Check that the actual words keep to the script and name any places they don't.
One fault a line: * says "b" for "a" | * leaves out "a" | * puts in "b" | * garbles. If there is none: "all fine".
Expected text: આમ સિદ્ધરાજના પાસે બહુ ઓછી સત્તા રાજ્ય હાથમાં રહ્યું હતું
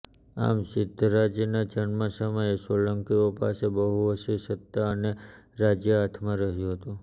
* puts in "જન્મ સમયે સોલંકીઓ"
* puts in "અને"